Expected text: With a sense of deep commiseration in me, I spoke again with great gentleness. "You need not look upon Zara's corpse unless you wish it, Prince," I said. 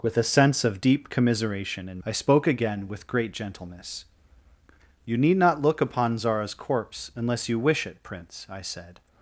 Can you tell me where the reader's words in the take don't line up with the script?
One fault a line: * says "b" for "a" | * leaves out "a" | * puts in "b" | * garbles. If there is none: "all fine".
* leaves out "me"